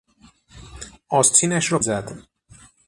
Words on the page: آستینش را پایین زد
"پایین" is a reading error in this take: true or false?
true